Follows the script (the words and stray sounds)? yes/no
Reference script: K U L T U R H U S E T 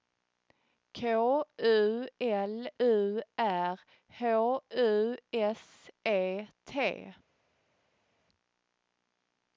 no